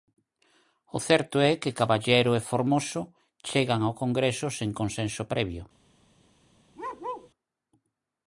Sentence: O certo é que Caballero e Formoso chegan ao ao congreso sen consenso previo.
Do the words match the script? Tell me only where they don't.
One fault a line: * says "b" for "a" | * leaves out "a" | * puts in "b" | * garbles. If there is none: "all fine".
* leaves out "ao"